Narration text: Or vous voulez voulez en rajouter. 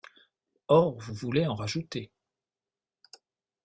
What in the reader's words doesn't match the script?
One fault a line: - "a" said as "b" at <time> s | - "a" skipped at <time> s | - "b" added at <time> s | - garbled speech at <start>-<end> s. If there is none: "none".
- "voulez" skipped at 1.5 s